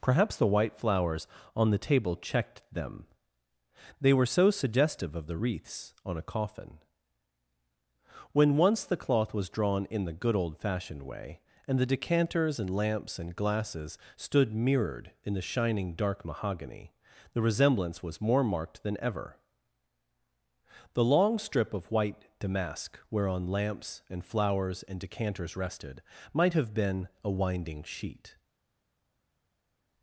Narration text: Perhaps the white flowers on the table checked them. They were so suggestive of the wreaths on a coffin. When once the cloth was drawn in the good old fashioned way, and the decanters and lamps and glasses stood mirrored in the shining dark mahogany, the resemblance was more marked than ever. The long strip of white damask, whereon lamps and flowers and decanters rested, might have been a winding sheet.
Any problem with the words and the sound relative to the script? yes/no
no